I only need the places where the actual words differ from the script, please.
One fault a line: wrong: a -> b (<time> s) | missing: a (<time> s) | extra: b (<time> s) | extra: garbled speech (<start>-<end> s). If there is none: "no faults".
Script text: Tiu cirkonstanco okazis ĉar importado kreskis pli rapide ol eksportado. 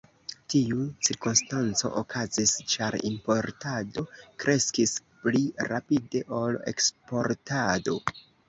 no faults